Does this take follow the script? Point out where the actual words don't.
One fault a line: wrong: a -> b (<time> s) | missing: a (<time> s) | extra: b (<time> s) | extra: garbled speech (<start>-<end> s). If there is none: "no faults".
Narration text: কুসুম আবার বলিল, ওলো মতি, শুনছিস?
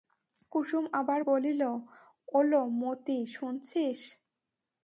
no faults